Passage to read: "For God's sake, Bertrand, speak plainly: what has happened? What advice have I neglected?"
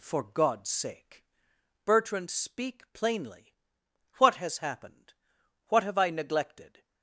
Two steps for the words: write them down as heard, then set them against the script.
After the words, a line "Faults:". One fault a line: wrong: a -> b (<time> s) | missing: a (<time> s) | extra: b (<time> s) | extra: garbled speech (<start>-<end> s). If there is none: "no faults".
"For God's sake, Bertrand, speak plainly: what has happened? What have I neglected?"
Faults:
missing: advice (5.8 s)